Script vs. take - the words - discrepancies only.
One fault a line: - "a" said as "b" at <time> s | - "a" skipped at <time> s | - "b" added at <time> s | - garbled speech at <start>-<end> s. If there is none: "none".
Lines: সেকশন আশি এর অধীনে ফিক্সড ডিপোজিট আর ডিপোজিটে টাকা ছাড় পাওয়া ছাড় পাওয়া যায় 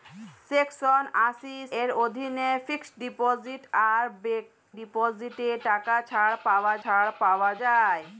none